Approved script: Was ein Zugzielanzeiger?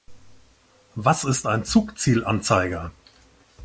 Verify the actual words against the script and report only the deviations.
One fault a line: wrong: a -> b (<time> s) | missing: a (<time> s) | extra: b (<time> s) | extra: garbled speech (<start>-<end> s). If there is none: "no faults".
extra: ist (1.2 s)